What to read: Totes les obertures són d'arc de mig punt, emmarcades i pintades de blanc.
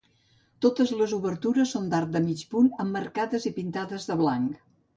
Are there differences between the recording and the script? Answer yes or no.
no